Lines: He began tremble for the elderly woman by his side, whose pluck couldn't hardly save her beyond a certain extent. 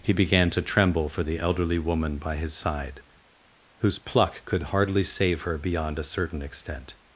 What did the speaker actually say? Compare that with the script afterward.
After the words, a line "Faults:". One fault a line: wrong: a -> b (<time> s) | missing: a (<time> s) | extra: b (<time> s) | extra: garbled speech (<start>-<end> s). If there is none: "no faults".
He began to tremble for the elderly woman by his side, whose pluck could hardly save her beyond a certain extent.
Faults:
extra: to (0.5 s)
wrong: couldn't -> could (4.5 s)